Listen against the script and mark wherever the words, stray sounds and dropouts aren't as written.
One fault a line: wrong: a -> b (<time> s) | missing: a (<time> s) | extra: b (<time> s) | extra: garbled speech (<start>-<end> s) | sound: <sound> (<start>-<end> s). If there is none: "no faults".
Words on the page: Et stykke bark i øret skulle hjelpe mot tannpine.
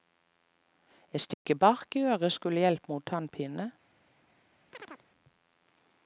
sound: dropout (1.3-1.5 s)
sound: chirp (4.7-5.1 s)